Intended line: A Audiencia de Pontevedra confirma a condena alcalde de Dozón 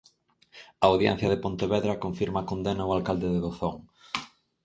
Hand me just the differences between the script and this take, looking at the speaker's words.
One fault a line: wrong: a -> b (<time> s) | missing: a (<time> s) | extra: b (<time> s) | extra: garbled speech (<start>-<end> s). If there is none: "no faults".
extra: ao (2.8 s)